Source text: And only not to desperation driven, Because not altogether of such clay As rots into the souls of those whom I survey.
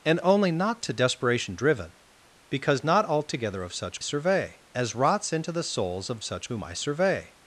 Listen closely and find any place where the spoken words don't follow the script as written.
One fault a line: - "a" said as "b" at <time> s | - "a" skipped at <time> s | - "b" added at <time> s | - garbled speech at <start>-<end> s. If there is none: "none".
- "clay" said as "survey" at 4.0 s
- "those" said as "such" at 6.2 s